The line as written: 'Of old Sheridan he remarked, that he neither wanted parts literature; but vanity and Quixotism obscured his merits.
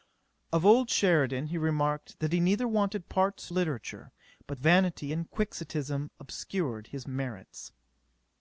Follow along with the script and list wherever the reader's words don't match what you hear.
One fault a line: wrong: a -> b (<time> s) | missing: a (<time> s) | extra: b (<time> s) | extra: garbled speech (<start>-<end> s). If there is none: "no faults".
no faults